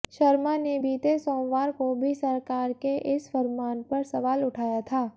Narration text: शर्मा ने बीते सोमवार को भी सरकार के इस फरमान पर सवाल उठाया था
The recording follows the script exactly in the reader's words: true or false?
true